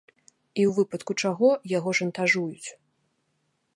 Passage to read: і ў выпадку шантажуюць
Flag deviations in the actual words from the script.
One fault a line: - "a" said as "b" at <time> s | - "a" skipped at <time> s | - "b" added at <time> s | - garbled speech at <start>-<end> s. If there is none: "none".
- "чаго яго" added at 1.3 s